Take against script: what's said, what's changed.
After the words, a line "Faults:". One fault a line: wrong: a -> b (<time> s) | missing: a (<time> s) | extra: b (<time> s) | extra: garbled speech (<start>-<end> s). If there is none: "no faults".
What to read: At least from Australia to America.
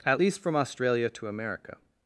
At least from Australia to America.
Faults:
no faults